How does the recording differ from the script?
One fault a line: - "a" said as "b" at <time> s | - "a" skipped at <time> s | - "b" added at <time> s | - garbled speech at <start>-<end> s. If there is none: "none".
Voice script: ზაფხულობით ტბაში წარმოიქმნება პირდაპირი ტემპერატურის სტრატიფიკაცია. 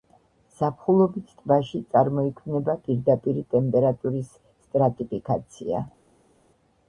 none